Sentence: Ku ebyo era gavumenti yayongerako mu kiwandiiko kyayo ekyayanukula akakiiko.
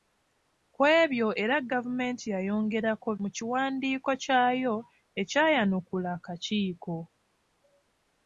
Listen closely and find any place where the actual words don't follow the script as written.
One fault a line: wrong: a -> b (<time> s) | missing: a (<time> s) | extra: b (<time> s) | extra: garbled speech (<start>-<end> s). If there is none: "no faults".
no faults